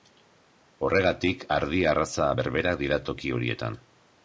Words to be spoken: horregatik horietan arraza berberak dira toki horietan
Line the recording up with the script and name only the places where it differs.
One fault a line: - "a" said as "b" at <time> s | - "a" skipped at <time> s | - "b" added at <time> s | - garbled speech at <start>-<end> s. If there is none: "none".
- "horietan" said as "ardi" at 1.6 s